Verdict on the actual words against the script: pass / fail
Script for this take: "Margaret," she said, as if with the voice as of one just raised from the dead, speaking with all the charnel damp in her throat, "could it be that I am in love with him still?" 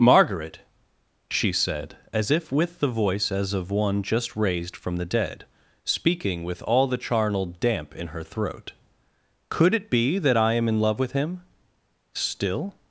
pass